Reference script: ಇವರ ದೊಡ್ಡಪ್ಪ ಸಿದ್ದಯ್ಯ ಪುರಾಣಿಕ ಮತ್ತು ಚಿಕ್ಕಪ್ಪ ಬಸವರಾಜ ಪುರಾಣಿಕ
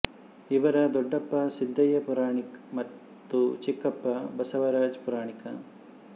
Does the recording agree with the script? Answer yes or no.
yes